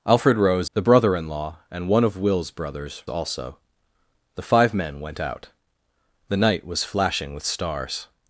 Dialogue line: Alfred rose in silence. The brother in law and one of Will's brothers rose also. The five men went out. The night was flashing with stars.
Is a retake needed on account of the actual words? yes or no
yes